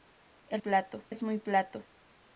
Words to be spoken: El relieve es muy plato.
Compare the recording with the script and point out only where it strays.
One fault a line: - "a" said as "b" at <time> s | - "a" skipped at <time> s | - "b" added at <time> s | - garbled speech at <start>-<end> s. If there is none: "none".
- "relieve" said as "plato" at 0.6 s